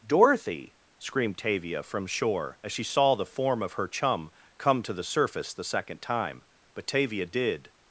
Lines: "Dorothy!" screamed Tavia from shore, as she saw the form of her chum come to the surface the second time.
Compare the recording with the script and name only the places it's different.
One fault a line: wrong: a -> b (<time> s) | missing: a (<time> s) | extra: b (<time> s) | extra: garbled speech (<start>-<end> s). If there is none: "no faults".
extra: But Tavia did (6.7 s)